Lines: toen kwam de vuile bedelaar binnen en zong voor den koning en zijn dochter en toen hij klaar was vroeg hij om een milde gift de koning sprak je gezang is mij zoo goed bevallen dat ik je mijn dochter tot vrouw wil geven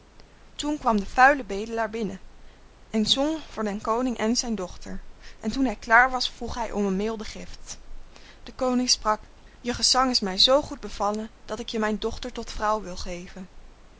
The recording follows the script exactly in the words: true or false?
true